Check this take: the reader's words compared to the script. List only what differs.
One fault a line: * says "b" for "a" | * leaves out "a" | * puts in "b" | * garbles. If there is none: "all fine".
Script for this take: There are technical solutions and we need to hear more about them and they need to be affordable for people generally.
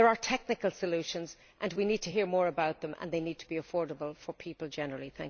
all fine